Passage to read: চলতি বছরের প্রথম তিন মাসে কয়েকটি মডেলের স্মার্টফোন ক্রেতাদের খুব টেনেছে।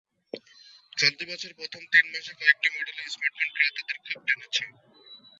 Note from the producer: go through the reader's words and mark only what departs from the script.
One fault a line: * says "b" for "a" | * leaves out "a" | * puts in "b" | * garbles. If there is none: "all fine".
all fine